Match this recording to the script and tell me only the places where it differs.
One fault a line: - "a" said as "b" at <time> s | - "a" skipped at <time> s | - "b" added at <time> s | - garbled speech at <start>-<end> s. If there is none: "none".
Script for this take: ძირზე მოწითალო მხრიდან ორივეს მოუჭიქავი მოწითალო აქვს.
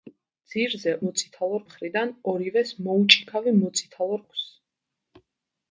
none